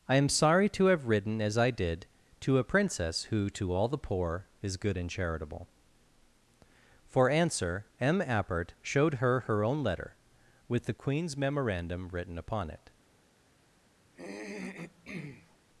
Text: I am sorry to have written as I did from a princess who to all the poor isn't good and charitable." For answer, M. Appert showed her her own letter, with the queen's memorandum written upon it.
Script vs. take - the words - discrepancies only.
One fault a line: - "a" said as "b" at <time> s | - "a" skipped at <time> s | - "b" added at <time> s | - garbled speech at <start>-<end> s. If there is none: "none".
- "from" said as "to" at 2.4 s
- "isn't" said as "is" at 4.6 s